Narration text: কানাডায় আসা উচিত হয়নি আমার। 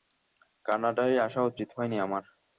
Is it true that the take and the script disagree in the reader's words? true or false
false